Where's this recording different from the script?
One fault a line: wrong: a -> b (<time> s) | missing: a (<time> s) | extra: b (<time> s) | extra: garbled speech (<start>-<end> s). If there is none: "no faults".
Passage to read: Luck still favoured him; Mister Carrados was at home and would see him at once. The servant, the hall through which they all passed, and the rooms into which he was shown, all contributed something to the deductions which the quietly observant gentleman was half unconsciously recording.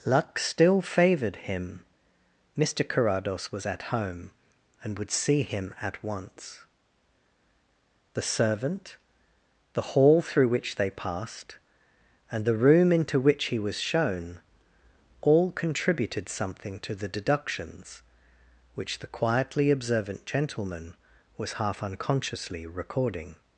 missing: all (10.9 s)
wrong: rooms -> room (12.5 s)